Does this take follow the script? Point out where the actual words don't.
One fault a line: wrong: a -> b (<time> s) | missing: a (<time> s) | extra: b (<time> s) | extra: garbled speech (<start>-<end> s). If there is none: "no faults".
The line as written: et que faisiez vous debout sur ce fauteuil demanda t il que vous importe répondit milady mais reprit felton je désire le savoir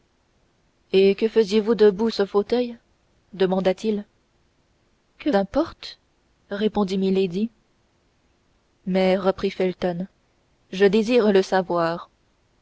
missing: sur (2.1 s)
missing: vous (5.3 s)